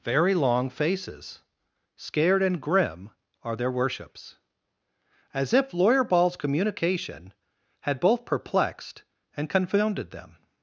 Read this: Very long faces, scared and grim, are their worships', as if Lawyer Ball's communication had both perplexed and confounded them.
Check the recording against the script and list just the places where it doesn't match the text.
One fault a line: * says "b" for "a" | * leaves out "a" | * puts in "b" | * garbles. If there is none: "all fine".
all fine